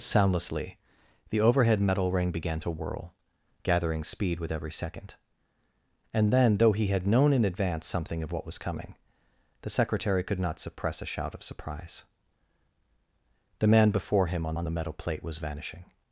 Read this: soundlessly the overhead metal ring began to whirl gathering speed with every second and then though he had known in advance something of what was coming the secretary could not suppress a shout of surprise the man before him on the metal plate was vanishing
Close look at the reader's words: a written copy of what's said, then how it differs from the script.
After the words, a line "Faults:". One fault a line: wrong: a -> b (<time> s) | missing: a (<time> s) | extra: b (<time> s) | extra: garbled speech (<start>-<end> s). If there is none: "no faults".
soundlessly the overhead metal ring began to whirl gathering speed with every second and then though he had known in advance something of what was coming the secretary could not suppress a shout of surprise the man before him on on the metal plate was vanishing
Faults:
extra: on (14.5 s)